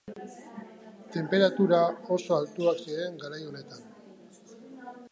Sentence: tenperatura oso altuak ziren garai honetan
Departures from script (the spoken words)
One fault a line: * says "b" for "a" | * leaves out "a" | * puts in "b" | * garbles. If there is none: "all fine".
all fine